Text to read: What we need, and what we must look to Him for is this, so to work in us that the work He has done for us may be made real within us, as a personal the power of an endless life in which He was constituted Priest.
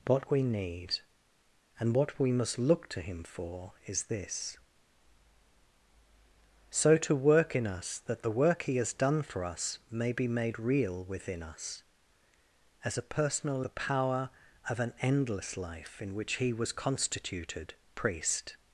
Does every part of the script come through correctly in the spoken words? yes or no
yes